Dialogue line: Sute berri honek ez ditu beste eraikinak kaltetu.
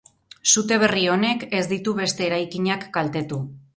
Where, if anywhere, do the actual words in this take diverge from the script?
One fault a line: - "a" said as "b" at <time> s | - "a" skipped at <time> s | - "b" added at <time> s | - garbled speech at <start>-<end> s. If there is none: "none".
none